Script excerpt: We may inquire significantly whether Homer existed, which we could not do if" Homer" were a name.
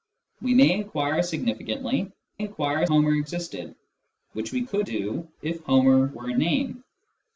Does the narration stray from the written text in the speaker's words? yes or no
yes